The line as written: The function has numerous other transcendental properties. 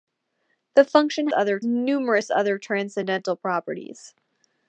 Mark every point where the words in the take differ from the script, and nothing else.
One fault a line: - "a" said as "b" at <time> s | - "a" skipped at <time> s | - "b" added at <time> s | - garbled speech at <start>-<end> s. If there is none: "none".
- "has" said as "other" at 1.3 s